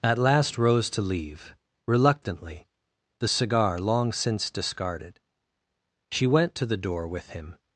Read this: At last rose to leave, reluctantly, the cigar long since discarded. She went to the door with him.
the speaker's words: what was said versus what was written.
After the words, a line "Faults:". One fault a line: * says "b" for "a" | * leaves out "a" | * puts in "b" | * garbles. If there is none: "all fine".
At last rose to leave, reluctantly, the cigar long since discarded. She went to the door with him.
Faults:
all fine